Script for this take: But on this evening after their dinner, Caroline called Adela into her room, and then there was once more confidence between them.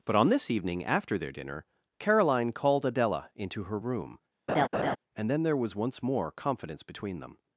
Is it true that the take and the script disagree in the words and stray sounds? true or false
true